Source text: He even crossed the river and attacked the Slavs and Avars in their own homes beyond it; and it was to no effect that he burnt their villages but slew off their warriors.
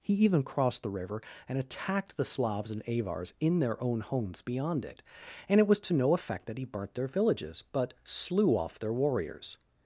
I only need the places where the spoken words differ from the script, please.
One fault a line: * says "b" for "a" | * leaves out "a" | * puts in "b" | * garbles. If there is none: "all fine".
all fine